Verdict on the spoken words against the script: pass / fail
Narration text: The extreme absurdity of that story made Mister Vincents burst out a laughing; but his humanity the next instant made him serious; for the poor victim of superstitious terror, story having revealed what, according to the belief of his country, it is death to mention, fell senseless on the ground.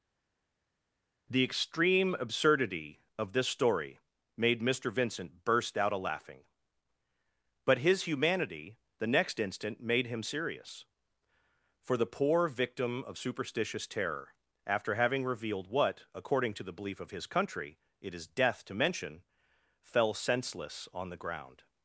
fail